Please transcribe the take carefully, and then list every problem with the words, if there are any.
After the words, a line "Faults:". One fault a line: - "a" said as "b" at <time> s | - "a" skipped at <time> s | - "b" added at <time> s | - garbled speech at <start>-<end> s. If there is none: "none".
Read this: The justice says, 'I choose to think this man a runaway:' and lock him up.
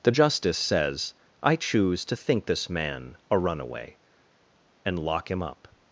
The justice says, 'I choose to think this man a runaway:' and lock him up.
Faults:
none